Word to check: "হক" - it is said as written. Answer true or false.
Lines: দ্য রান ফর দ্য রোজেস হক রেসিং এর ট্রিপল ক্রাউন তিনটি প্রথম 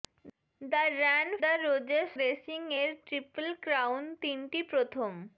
false